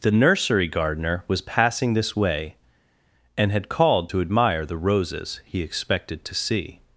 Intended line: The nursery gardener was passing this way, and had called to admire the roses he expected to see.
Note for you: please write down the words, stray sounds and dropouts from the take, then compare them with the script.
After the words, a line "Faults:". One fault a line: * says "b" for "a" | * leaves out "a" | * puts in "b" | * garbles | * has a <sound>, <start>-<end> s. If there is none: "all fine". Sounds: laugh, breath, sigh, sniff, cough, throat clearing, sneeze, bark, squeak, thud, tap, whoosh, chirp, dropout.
The nursery gardener was passing this way, and had called to admire the roses he expected to see.
Faults:
all fine